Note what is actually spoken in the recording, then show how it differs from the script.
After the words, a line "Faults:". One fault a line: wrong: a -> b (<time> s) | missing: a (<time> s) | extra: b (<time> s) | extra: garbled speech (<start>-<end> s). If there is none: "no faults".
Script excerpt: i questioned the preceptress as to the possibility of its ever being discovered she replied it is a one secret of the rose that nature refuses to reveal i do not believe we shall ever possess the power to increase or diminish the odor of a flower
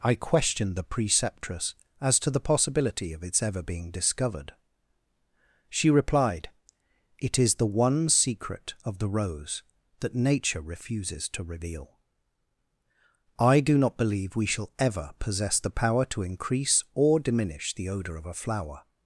i questioned the preceptress as to the possibility of its ever being discovered she replied it is the one secret of the rose that nature refuses to reveal i do not believe we shall ever possess the power to increase or diminish the odor of a flower
Faults:
wrong: a -> the (7.5 s)